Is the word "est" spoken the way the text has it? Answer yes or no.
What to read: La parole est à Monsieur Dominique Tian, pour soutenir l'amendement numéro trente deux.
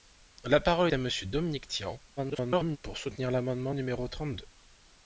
no